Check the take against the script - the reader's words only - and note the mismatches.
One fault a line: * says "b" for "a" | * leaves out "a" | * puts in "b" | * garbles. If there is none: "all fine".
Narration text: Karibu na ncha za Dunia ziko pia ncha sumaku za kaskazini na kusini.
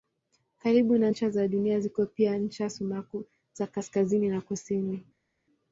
all fine